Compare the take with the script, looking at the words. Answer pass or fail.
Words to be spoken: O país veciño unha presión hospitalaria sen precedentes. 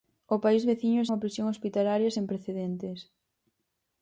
pass